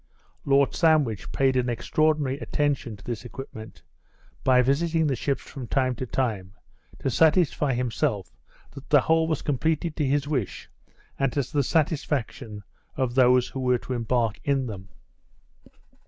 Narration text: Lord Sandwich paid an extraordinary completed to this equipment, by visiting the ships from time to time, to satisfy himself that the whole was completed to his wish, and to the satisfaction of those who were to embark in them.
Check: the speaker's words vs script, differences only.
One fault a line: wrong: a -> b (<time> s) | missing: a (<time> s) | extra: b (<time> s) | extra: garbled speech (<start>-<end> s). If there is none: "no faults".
wrong: completed -> attention (2.4 s)